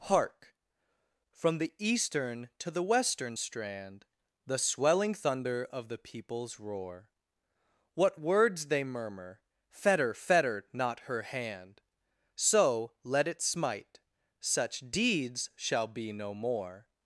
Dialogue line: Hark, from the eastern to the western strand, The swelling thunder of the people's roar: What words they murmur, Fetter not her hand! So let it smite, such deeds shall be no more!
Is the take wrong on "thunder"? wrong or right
right